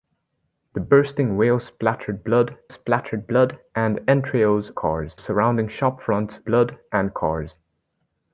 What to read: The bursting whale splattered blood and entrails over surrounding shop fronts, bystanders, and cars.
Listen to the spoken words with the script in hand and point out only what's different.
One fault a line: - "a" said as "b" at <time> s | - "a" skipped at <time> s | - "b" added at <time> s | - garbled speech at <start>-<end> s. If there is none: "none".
- "splattered blood" added at 2.7 s
- "over" said as "cars" at 4.7 s
- "bystanders" said as "blood" at 6.4 s